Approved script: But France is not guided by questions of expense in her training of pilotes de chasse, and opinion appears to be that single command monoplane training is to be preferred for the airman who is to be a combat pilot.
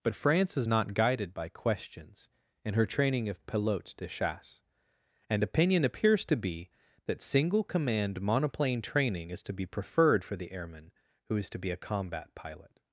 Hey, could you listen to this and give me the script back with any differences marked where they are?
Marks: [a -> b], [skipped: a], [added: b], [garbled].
But France is not guided by questions [skipped: of expense] in her training of pilotes de chasse, and opinion appears to be that single command monoplane training is to be preferred for the airman who is to be a combat pilot.